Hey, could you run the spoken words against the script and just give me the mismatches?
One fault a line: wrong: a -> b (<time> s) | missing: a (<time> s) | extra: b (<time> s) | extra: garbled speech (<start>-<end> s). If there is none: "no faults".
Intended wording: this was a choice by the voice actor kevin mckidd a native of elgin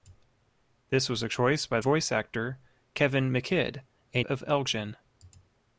missing: the (1.8 s)
missing: native (4.2 s)